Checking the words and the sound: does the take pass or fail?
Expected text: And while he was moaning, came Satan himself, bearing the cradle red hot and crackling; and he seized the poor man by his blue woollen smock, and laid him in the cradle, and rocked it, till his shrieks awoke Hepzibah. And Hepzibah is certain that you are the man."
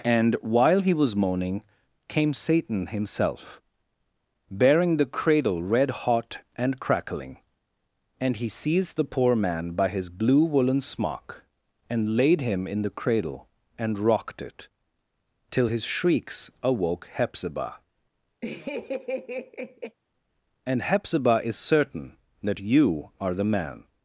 fail